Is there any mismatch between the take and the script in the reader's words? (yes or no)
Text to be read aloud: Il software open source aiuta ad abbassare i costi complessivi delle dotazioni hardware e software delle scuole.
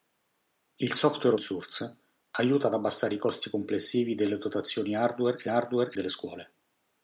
yes